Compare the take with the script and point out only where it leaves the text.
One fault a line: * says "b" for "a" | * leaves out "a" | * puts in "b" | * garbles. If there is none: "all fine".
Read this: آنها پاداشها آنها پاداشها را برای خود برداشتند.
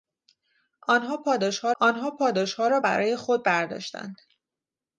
all fine